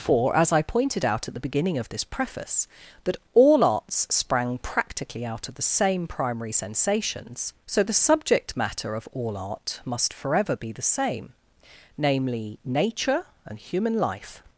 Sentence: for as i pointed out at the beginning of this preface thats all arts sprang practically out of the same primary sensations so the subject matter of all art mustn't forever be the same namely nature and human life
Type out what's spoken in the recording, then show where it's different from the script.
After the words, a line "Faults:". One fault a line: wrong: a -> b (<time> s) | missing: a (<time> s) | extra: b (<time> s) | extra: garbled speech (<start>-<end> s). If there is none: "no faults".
for as i pointed out at the beginning of this preface that all arts sprang practically out of the same primary sensations so the subject matter of all art must forever be the same namely nature and human life
Faults:
wrong: thats -> that (3.0 s)
wrong: mustn't -> must (9.8 s)